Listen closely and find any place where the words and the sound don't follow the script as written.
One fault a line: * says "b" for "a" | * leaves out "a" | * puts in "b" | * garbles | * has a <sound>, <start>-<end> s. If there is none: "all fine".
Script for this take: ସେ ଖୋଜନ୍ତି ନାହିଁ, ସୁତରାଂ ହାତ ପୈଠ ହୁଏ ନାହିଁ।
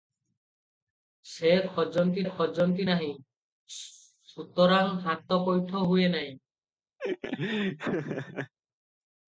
* puts in "ଖୋଜନ୍ତି"
* has a laugh, 7.0-8.5 s